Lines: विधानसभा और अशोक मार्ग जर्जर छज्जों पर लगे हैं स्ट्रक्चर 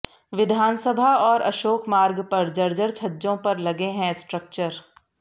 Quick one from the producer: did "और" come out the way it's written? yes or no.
yes